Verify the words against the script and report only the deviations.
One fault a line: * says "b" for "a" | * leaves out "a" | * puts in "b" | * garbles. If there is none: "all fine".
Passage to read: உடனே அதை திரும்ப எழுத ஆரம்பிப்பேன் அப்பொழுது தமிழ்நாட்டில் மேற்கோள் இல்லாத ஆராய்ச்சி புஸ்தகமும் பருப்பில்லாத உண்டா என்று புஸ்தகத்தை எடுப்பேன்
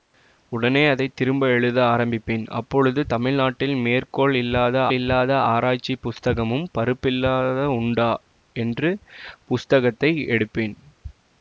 * puts in "இல்லாத"